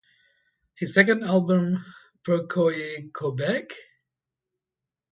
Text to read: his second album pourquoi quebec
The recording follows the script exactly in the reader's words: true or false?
true